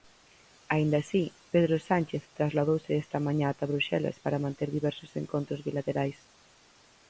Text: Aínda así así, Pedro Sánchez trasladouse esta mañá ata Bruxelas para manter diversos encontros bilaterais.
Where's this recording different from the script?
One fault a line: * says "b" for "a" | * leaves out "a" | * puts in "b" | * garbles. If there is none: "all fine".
* leaves out "así"